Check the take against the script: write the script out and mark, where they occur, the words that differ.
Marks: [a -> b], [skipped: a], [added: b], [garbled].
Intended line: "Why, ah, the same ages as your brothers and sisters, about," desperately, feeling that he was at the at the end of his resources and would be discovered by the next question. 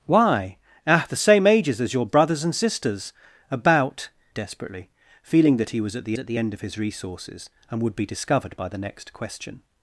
"Why, ah, the same ages as your brothers and sisters, about," desperately, feeling that he was at the at the end of his resources and would be discovered by the next question.